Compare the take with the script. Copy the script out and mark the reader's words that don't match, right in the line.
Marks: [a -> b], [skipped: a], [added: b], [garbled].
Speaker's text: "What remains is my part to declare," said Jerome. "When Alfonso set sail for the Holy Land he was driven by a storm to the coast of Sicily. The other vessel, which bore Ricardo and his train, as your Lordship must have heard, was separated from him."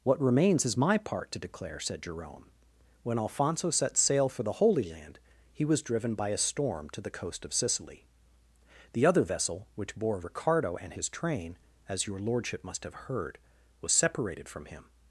"What remains is my part to declare," said Jerome. "When Alfonso set sail for the Holy Land he was driven by a storm to the coast of Sicily. The other vessel, which bore Ricardo and his train, as your Lordship must have heard, was separated from him."